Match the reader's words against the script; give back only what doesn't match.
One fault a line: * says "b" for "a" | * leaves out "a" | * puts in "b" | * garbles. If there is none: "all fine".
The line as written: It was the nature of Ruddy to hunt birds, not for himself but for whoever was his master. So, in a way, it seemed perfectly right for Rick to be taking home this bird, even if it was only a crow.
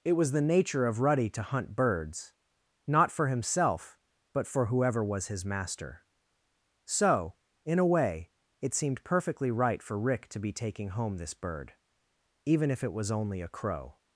all fine